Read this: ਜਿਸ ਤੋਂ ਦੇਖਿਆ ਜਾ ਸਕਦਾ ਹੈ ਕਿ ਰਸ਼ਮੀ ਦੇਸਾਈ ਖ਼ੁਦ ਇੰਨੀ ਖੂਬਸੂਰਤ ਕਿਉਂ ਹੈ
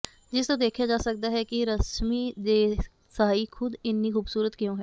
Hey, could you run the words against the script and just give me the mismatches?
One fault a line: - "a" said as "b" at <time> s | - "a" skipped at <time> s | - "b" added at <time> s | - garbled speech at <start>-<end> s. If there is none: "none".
none